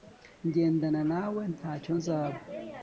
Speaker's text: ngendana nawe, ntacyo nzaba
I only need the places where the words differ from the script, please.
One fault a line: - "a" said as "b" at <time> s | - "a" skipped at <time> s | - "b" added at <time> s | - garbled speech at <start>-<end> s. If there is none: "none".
none